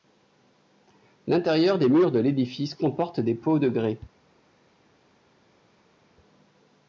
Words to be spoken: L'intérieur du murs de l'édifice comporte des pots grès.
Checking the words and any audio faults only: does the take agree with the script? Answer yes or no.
no